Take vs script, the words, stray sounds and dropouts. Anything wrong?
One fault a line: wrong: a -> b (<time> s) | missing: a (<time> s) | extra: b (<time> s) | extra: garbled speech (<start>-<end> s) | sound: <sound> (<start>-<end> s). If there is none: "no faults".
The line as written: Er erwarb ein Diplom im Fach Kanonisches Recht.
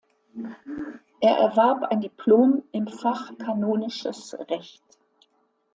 no faults